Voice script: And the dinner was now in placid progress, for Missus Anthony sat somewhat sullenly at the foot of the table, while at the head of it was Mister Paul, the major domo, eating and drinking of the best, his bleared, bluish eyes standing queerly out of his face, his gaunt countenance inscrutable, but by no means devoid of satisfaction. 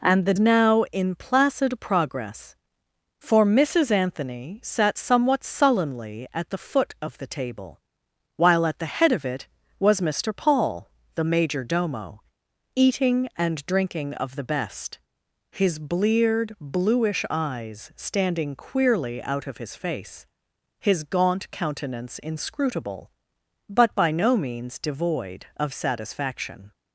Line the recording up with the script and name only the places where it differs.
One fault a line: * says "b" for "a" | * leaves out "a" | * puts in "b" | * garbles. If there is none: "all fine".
* leaves out "dinner was"